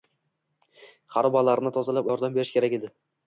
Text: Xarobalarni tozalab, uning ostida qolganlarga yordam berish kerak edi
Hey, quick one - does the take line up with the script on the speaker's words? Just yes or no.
no